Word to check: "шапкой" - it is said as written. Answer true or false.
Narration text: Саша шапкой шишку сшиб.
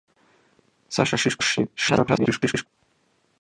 false